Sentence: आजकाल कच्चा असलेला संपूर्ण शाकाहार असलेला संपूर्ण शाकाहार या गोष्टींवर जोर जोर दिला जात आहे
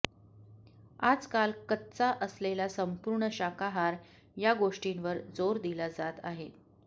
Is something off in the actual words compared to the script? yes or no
yes